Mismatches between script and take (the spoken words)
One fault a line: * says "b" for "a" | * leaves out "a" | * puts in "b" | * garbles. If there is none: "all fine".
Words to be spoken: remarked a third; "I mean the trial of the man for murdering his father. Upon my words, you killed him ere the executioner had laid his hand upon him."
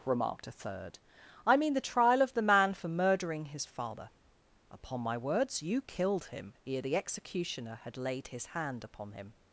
all fine